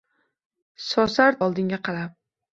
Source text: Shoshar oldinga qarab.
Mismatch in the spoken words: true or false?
false